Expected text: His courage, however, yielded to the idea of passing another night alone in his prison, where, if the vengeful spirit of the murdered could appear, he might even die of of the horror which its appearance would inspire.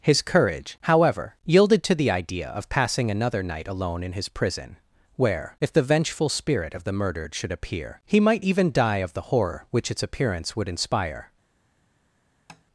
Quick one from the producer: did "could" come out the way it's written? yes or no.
no